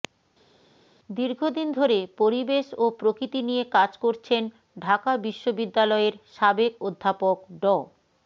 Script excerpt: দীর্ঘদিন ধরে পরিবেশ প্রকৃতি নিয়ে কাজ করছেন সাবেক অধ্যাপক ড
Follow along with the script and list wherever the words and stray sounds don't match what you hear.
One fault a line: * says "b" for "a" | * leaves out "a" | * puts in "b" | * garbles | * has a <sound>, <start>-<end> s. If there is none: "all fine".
* puts in "ও"
* puts in "ঢাকা বিশ্ববিদ্যালয়ের"